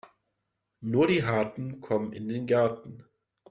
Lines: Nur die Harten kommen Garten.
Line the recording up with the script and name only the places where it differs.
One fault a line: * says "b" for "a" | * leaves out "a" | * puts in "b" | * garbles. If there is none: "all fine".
* puts in "in den"